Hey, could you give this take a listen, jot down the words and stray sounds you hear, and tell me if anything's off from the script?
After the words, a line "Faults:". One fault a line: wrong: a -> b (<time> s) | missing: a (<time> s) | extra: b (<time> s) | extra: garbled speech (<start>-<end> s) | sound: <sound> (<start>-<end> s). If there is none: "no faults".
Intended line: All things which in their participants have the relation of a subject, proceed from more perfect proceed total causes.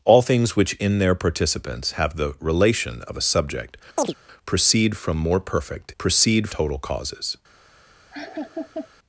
All things which in their participants have the relation of a subject, proceed from more perfect proceed total causes.
Faults:
sound: chirp (4.0-4.1 s)
sound: laugh (8.1-8.9 s)